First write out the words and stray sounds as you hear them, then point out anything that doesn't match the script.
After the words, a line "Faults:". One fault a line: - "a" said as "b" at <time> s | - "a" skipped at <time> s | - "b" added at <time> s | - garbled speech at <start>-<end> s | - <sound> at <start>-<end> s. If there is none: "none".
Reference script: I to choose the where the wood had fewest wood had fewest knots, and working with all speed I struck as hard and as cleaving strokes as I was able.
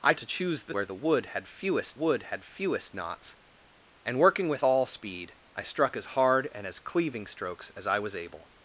I to choose the where the wood had fewest wood had fewest knots, and working with all speed I struck as hard and as cleaving strokes as I was able.
Faults:
none